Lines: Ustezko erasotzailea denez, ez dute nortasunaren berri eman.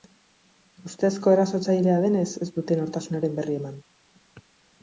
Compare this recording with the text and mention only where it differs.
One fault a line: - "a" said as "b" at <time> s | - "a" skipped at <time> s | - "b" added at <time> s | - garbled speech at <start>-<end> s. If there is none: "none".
none